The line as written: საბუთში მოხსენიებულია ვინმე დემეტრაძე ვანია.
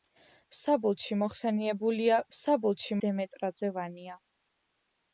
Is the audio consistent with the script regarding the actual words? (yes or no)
no